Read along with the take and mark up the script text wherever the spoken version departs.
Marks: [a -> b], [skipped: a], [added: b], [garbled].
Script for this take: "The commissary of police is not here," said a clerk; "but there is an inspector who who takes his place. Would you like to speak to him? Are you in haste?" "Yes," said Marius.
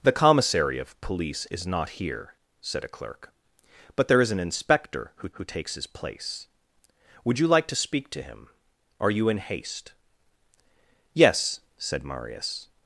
"The commissary of police is not here," said a clerk; "but there is an inspector who who takes his place. Would you like to speak to him? Are you in haste?" "Yes," said Marius.